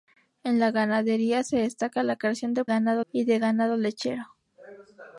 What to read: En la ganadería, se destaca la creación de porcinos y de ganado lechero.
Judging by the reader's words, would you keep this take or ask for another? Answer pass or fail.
fail